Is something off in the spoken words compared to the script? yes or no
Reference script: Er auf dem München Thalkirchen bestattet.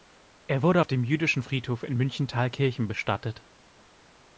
yes